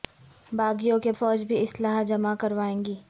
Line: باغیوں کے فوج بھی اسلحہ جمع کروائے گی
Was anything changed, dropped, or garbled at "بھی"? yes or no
no